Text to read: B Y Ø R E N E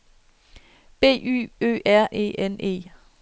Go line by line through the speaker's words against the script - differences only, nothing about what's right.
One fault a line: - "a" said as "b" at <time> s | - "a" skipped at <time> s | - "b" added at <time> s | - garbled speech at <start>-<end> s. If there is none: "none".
none